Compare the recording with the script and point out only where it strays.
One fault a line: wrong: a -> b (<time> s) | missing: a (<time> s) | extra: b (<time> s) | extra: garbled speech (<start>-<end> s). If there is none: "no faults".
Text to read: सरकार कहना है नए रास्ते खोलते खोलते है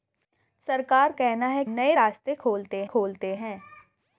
no faults